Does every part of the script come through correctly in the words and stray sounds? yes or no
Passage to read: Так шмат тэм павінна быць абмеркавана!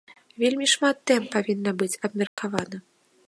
no